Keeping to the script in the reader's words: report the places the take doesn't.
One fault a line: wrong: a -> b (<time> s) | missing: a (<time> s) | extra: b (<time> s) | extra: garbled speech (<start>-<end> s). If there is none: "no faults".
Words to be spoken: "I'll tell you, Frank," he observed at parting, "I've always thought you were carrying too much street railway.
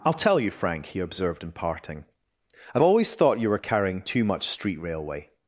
wrong: at -> in (1.4 s)